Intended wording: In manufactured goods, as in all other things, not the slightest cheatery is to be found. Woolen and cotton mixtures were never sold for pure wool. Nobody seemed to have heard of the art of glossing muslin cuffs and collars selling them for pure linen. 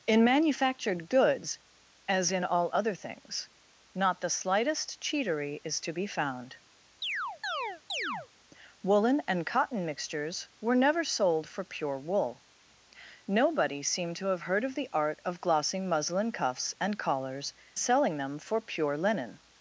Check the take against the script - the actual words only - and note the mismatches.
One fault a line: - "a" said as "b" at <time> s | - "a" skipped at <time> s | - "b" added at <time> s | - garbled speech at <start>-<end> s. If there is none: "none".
none